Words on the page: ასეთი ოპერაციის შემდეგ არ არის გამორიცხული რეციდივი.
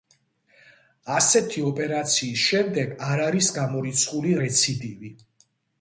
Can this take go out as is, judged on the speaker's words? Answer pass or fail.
pass